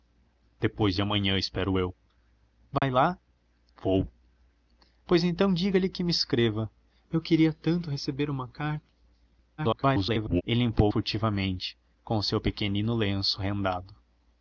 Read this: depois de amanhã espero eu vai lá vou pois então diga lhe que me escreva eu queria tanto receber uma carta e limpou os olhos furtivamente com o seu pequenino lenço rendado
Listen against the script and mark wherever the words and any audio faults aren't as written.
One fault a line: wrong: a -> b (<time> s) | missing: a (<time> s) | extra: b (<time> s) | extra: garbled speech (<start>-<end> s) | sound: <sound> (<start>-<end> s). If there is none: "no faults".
sound: dropout (2.8-2.8 s)
extra: garbled speech (9.6-10.4 s)
missing: os olhos (10.9 s)